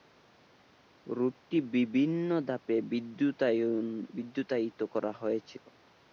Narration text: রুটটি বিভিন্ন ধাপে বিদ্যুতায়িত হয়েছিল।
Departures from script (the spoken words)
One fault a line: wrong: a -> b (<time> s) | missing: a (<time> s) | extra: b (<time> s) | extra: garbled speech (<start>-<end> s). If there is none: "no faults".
extra: করা (4.9 s)